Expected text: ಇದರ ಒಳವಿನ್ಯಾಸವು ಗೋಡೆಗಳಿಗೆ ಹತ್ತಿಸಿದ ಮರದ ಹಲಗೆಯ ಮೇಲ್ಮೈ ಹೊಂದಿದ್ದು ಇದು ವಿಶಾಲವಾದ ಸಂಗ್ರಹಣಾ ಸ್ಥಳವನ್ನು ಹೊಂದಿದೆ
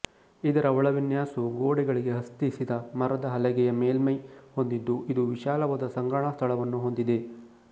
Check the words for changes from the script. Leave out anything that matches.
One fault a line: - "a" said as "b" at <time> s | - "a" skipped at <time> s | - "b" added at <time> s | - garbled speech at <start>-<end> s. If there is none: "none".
none